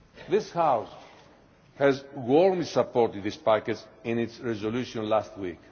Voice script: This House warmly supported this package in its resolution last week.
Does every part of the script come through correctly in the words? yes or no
yes